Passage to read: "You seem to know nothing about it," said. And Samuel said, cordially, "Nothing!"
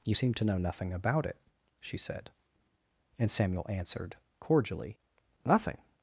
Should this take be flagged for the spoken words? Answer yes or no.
yes